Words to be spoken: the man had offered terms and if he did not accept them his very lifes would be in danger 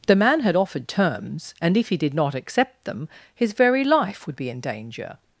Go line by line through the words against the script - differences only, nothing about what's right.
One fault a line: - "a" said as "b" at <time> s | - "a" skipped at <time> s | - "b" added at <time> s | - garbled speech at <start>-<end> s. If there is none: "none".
- "lifes" said as "life" at 3.8 s